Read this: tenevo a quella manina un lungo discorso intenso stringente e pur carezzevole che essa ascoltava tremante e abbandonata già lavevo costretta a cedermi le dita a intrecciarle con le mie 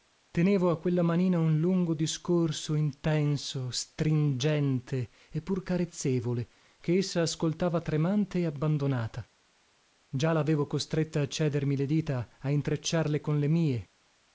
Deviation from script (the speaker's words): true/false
false